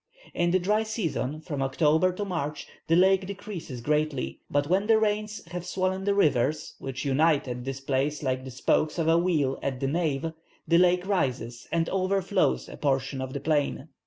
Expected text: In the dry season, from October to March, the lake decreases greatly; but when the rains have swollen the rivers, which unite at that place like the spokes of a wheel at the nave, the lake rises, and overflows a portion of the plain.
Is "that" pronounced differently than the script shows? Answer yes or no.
yes